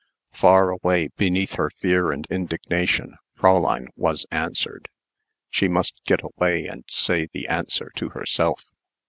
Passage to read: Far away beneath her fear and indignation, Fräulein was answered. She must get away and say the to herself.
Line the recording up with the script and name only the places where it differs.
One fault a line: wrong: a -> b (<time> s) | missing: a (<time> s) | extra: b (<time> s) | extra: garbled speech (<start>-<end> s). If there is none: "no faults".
extra: answer (7.5 s)